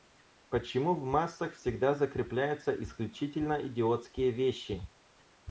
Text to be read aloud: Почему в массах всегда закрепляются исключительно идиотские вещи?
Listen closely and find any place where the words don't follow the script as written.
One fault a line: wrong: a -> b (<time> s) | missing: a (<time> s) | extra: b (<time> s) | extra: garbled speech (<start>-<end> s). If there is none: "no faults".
no faults